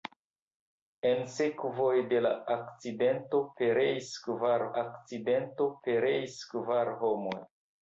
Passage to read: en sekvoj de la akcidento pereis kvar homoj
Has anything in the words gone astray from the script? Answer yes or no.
yes